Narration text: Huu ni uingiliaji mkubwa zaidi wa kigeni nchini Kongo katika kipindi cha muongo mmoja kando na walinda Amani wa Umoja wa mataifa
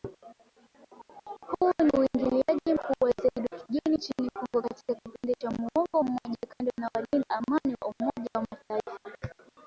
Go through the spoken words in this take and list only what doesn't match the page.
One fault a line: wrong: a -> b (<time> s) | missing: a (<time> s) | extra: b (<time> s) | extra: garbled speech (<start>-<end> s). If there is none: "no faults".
no faults